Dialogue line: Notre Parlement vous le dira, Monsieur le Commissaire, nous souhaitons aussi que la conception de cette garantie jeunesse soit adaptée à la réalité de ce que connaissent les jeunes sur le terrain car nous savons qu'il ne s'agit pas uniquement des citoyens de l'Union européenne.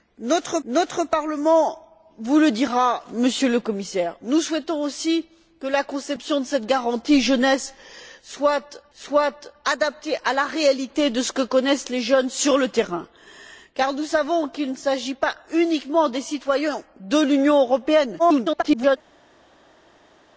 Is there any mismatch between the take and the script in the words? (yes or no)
yes